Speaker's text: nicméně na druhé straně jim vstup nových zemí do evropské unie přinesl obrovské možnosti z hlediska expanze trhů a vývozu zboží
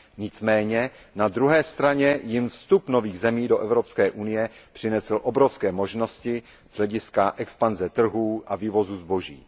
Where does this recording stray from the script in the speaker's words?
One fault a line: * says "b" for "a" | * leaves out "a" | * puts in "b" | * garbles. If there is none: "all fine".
all fine